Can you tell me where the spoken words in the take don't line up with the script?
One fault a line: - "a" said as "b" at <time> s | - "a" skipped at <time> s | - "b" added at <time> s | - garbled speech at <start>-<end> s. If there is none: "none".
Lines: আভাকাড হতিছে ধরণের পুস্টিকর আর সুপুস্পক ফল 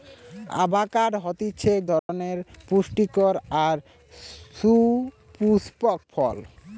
none